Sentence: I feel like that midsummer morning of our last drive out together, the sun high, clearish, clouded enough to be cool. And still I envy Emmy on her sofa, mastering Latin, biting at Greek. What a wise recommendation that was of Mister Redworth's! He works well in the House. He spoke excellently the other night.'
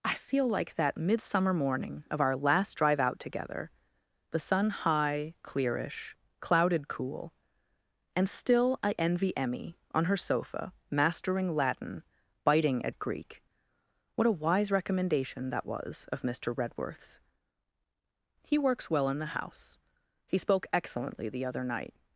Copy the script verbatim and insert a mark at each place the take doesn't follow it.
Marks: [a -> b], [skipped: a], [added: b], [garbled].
I feel like that midsummer morning of our last drive out together, the sun high, clearish, clouded [skipped: enough to be] cool. And still I envy Emmy on her sofa, mastering Latin, biting at Greek. What a wise recommendation that was of Mister Redworth's! He works well in the House. He spoke excellently the other night.'